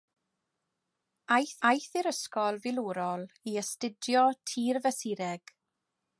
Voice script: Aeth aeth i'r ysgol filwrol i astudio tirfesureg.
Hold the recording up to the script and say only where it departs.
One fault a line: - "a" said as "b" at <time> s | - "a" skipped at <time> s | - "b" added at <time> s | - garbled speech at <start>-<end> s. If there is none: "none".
none